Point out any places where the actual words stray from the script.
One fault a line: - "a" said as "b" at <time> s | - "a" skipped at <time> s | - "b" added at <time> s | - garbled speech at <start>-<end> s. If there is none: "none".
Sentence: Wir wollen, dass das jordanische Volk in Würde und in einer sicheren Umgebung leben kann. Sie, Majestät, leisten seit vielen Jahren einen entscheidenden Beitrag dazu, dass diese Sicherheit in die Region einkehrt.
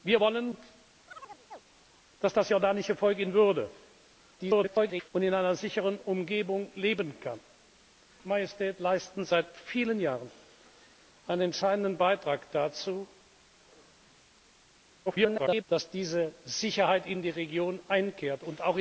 - garbled speech at 4.4-5.1 s
- "Sie" skipped at 7.4 s
- garbled speech at 15.1-15.6 s